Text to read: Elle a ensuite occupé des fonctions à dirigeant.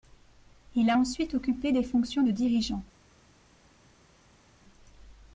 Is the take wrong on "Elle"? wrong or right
wrong